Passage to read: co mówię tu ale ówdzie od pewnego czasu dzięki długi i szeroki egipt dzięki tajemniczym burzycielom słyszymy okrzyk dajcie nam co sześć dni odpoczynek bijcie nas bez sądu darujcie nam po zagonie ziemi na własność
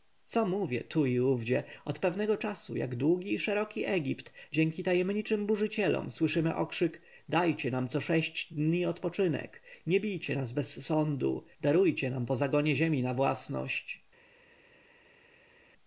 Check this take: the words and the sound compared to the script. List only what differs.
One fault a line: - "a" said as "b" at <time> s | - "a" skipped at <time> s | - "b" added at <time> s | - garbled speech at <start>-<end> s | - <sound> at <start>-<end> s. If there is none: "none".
- "ale" said as "i" at 1.1 s
- "dzięki" said as "jak" at 2.8 s
- "nie" added at 9.9 s